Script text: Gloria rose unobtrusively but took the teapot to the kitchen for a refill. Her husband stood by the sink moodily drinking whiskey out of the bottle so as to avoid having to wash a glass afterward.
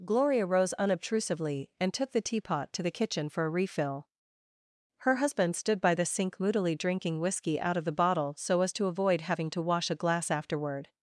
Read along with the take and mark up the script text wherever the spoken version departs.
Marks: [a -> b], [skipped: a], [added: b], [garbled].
Gloria rose unobtrusively [but -> and] took the teapot to the kitchen for a refill. Her husband stood by the sink moodily drinking whiskey out of the bottle so as to avoid having to wash a glass afterward.